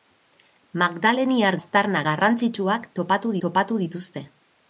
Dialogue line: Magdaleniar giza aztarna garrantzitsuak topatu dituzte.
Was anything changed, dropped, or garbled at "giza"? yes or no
yes